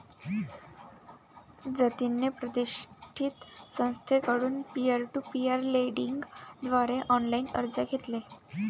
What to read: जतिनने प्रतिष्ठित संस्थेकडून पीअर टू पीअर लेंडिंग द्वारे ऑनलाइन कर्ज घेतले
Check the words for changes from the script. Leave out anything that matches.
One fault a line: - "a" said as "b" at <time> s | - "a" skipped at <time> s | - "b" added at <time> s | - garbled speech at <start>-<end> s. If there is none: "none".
none